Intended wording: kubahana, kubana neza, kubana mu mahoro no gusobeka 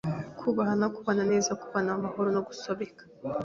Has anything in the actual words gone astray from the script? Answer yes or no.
no